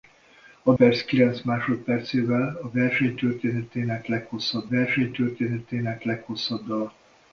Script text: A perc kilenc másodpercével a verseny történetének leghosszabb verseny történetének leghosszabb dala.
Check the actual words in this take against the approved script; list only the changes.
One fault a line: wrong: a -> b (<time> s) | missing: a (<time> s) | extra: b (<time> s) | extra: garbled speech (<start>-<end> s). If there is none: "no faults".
no faults